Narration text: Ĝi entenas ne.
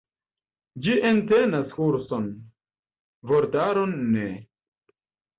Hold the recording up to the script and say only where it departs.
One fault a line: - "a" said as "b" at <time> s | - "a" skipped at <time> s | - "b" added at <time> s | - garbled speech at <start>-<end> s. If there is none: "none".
- "kurson vortaron" added at 1.8 s